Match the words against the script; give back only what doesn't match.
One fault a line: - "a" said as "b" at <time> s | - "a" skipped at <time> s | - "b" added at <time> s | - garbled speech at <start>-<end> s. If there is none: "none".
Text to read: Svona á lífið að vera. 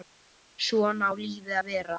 none